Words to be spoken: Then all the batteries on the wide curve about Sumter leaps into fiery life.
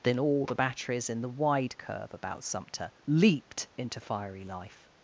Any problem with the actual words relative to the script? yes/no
yes